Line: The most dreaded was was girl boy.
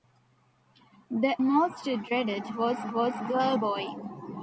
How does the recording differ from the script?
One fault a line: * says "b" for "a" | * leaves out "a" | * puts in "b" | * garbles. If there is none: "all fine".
all fine